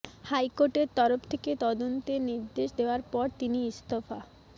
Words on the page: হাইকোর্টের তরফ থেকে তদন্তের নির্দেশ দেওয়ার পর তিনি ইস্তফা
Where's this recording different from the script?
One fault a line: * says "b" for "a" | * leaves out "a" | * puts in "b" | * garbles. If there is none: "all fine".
all fine